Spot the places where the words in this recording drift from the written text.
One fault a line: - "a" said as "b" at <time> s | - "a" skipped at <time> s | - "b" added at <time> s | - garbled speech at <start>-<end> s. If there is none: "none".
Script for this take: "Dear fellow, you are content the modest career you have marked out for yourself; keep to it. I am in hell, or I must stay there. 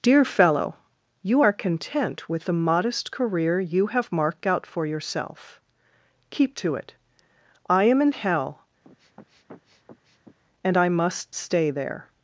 - "with" added at 2.3 s
- "or" said as "and" at 10.6 s